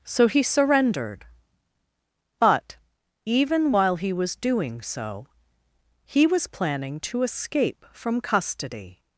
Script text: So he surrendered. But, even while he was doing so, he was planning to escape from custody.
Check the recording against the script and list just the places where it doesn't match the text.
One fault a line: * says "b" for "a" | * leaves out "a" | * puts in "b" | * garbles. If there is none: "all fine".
all fine